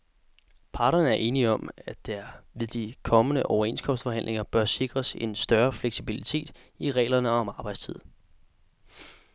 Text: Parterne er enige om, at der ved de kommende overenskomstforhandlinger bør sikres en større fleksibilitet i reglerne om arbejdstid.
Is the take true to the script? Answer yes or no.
yes